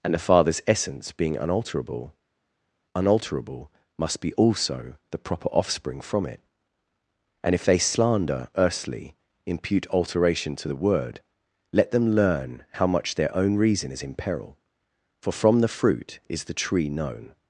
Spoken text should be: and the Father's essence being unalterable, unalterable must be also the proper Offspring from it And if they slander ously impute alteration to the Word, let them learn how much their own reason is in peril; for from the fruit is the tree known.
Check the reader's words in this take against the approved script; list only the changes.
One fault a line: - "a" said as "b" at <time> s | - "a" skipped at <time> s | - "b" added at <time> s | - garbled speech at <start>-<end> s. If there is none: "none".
- "ously" said as "earthly" at 8.6 s